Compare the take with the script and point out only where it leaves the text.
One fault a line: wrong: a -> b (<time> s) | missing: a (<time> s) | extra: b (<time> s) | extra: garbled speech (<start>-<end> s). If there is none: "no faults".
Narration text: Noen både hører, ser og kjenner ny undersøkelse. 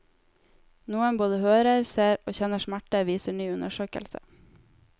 extra: smerte viser (2.6 s)